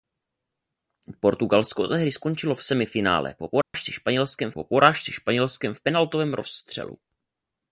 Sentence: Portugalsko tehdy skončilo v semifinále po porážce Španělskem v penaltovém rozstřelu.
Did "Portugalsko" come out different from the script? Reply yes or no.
no